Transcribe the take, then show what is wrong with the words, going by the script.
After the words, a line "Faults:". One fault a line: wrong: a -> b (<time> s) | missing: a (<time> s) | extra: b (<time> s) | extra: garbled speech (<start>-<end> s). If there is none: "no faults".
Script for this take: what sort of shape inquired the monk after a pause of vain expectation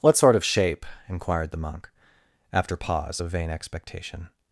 what sort of shape inquired the monk after pause of vain expectation
Faults:
missing: a (2.8 s)